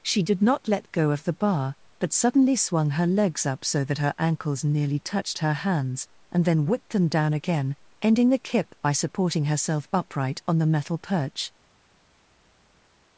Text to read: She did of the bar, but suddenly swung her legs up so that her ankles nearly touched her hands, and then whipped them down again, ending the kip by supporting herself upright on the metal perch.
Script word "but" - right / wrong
right